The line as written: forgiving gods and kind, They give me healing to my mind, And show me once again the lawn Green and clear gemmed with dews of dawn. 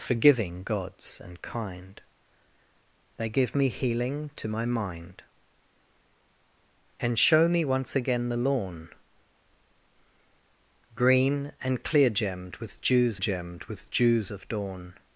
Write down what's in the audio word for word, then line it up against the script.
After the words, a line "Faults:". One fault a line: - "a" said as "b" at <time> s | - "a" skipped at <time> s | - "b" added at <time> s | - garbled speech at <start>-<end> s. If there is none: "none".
forgiving gods and kind, They give me healing to my mind, And show me once again the lawn Green and clear gemmed with dews gemmed with dews of dawn.
Faults:
- "gemmed with dews" added at 13.1 s